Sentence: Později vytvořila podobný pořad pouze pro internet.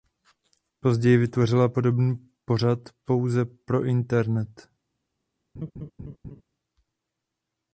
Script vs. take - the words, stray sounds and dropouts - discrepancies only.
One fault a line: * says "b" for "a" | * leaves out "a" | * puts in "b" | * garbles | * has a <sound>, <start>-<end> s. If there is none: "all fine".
* has a laugh, 5.6-6.4 s